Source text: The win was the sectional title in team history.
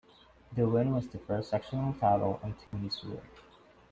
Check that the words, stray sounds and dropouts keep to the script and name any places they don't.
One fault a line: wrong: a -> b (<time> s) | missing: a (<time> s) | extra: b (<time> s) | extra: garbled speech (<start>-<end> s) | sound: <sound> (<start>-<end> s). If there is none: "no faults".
extra: first (1.2 s)
sound: dropout (2.7-2.7 s)